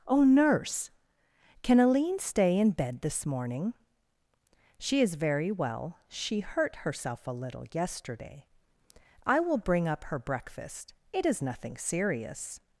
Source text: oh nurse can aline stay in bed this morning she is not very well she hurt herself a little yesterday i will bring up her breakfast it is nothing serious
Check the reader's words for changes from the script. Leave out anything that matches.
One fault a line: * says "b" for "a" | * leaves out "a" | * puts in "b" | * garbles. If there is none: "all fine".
* leaves out "not"